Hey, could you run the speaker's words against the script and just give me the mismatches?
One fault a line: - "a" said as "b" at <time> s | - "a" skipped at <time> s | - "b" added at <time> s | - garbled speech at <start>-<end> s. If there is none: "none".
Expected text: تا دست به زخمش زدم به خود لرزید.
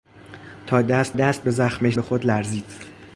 - "دست" added at 1.1 s
- "زدم" skipped at 2.0 s